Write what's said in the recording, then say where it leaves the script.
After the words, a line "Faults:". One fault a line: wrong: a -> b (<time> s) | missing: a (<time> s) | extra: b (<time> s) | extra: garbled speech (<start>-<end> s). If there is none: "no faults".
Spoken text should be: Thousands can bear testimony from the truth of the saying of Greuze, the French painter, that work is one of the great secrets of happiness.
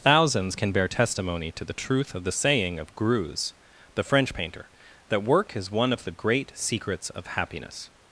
Thousands can bear testimony to the truth of the saying of Greuze, the French painter, that work is one of the great secrets of happiness.
Faults:
wrong: from -> to (1.5 s)